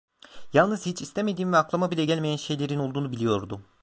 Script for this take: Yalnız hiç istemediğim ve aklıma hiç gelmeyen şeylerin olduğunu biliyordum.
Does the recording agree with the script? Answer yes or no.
no